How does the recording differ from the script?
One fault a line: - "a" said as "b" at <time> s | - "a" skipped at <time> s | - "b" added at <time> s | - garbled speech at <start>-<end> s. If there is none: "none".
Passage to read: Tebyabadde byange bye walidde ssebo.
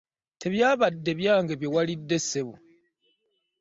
none